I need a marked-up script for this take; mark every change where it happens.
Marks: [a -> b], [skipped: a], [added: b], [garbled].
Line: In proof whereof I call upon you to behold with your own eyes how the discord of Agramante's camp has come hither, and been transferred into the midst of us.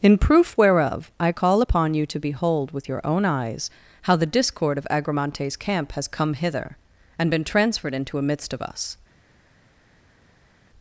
In proof whereof I call upon you to behold with your own eyes how the discord of Agramante's camp has come hither, and been transferred into [the -> a] midst of us.